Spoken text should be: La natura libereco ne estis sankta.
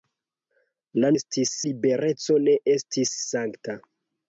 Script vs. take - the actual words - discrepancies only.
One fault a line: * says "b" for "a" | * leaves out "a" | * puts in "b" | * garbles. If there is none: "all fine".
* says "estis" for "natura"